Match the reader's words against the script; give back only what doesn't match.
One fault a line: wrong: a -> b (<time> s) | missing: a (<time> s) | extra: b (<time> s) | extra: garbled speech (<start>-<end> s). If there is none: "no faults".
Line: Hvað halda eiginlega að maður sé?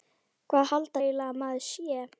no faults